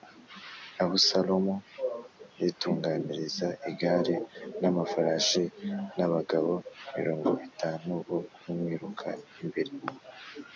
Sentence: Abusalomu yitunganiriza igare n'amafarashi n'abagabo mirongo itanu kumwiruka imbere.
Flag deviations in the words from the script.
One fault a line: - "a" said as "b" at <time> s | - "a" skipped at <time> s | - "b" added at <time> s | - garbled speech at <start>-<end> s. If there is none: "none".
- "bo" added at 8.1 s